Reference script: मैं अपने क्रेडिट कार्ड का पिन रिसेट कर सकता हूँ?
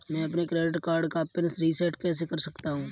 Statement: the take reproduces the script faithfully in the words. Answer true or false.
false